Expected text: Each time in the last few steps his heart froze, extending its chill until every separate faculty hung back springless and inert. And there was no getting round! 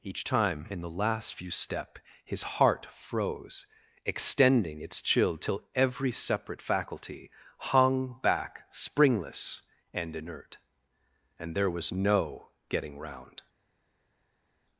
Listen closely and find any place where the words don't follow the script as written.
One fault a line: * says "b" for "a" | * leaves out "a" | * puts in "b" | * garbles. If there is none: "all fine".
* says "step" for "steps"
* says "till" for "until"